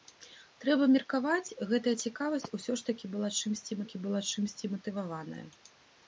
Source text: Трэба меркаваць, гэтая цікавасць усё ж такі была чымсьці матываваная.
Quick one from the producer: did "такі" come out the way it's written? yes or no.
yes